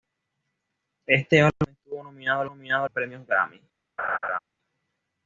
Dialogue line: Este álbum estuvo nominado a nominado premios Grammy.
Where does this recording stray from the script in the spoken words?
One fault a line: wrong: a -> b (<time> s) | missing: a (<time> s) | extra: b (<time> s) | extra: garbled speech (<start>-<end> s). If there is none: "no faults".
no faults